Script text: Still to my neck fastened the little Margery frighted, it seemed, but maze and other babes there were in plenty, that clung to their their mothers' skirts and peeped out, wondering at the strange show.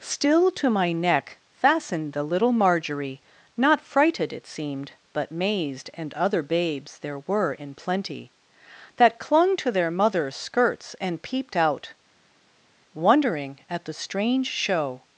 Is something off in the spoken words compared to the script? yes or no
yes